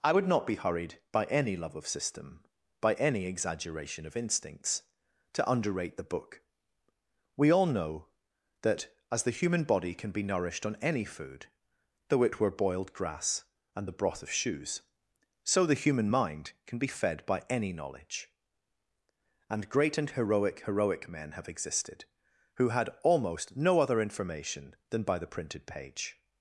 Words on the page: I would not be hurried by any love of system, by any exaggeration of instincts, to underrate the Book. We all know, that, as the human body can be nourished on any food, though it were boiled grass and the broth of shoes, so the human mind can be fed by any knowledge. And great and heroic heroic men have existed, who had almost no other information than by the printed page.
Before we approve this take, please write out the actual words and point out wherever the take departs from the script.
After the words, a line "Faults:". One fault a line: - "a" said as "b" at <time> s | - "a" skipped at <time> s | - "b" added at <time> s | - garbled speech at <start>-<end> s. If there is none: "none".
I would not be hurried by any love of system, by any exaggeration of instincts, to underrate the Book. We all know, that, as the human body can be nourished on any food, though it were boiled grass and the broth of shoes, so the human mind can be fed by any knowledge. And great and heroic heroic men have existed, who had almost no other information than by the printed page.
Faults:
none